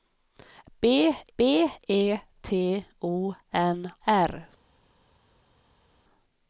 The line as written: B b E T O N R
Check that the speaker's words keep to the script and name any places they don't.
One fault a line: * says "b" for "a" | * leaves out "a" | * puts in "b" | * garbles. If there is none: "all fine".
all fine